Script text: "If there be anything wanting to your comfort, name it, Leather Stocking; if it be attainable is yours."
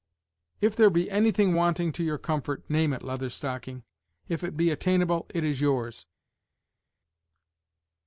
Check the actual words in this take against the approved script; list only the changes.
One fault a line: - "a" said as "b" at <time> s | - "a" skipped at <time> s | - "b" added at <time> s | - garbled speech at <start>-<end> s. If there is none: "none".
- "it" added at 5.3 s